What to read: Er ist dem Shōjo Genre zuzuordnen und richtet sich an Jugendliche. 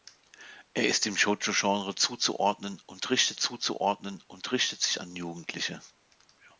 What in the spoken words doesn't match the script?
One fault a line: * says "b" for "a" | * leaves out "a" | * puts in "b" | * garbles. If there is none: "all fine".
* puts in "zuzuordnen und richtet"